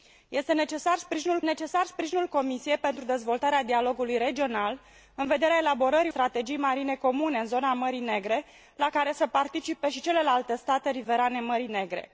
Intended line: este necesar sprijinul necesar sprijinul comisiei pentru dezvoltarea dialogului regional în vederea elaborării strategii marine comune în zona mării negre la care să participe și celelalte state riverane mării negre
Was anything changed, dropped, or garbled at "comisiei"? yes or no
no